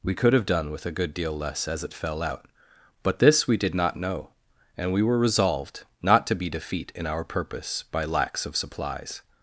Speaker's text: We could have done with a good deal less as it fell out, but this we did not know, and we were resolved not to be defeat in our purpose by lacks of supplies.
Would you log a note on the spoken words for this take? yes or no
no